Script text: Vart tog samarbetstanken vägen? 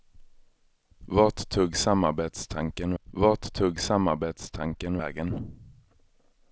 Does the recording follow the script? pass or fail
fail